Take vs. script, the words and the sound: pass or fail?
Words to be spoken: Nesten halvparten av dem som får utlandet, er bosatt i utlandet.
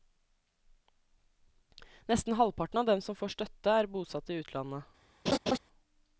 fail